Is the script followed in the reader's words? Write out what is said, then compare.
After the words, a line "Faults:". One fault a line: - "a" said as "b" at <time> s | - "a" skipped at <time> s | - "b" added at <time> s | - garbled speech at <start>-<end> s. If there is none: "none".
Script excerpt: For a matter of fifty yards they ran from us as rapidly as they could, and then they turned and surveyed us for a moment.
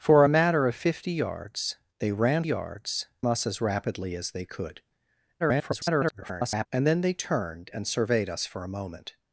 For a matter of fifty yards they ran yards us as rapidly as they could, [garbled] and then they turned and surveyed us for a moment.
Faults:
- "from" said as "yards" at 2.4 s
- garbled speech at 5.4-6.7 s